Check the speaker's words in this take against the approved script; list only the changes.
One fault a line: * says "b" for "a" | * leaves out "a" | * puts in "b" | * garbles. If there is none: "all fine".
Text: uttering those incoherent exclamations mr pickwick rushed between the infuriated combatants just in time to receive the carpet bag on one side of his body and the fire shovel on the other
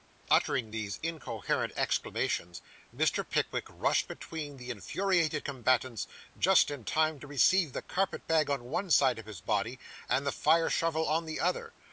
* says "these" for "those"